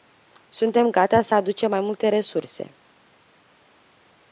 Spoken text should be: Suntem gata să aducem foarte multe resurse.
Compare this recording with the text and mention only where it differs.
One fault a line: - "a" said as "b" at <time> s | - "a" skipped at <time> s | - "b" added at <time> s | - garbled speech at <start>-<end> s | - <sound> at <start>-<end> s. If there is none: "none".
- "foarte" said as "mai" at 1.7 s